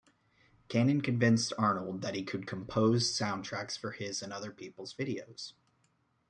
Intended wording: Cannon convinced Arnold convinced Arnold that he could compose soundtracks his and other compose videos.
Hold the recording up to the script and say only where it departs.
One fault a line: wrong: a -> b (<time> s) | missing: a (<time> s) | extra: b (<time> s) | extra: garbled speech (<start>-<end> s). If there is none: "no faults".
missing: convinced Arnold (2.0 s)
extra: for (3.8 s)
wrong: compose -> people's (4.5 s)